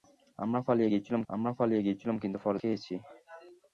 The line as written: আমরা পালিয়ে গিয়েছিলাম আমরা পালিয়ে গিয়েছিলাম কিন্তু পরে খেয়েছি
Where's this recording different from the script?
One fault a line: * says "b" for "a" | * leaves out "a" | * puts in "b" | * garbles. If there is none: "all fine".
all fine